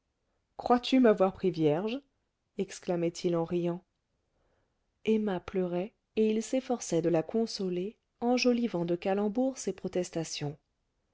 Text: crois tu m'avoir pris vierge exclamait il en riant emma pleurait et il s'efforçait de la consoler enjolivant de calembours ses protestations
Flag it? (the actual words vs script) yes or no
no